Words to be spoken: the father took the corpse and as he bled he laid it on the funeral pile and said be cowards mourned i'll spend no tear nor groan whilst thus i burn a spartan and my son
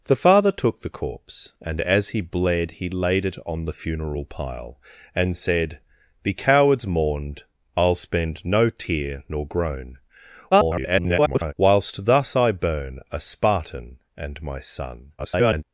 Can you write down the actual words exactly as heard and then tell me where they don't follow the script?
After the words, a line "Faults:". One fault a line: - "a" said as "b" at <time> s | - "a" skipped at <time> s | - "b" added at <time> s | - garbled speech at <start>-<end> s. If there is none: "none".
the father took the corpse and as he bled he laid it on the funeral pile and said be cowards mourned i'll spend no tear nor groan [garbled] whilst thus i burn a spartan and my son [garbled]
Faults:
- garbled speech at 10.5-11.5 s
- garbled speech at 15.2-15.6 s